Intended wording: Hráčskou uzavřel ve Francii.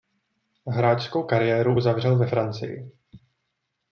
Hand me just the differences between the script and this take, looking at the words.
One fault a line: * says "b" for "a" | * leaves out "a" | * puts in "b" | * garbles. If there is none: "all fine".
* puts in "kariéru"